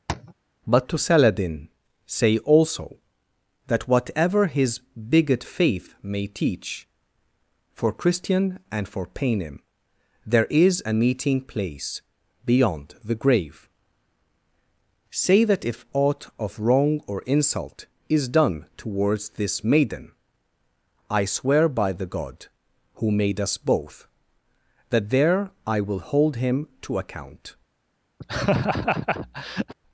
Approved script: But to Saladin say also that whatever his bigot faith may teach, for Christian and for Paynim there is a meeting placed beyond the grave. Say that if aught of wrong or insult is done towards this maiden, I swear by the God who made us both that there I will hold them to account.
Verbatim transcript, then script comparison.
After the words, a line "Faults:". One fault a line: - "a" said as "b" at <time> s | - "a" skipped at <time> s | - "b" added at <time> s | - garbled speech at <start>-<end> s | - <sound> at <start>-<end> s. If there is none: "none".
But to Saladin say also that whatever his bigot faith may teach, for Christian and for Paynim there is a meeting place beyond the grave. Say that if aught of wrong or insult is done towards this maiden, I swear by the God who made us both that there I will hold him to account.
Faults:
- tap at 0.1-0.3 s
- "placed" said as "place" at 11.4 s
- "them" said as "him" at 26.4 s
- laugh at 28.2-29.7 s